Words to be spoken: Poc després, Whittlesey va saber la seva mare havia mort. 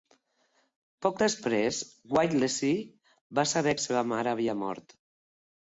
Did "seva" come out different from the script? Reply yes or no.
no